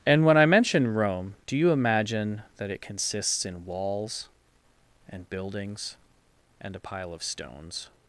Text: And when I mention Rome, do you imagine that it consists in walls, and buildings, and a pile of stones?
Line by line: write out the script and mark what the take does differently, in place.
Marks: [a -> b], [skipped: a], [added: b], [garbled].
And when I mention Rome, do you imagine that it consists in walls, and buildings, and a pile of stones?